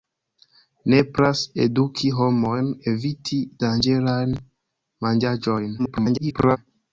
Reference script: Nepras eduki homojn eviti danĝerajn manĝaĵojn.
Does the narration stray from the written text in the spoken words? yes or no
yes